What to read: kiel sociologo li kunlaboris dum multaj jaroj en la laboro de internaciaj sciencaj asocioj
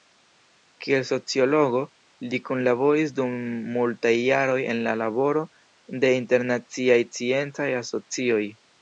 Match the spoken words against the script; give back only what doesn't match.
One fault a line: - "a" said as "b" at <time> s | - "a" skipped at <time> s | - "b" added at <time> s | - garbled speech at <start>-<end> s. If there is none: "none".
none